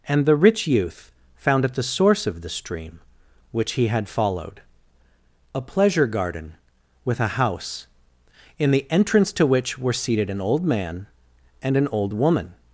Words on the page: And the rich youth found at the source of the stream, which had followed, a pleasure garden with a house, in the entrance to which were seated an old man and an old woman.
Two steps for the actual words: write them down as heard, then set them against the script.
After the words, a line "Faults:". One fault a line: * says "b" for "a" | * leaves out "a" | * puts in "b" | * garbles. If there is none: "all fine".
And the rich youth found at the source of the stream, which he had followed, a pleasure garden with a house, in the entrance to which were seated an old man and an old woman.
Faults:
* puts in "he"